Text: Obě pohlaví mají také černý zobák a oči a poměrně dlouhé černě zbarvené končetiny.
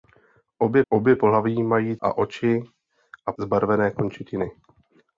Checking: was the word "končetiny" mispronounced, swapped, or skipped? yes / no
no